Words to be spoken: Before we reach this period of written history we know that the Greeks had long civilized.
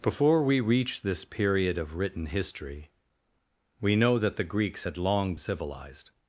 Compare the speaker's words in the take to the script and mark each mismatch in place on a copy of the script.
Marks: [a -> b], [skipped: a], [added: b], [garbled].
Before we reach this period of written history we know that the Greeks had long civilized.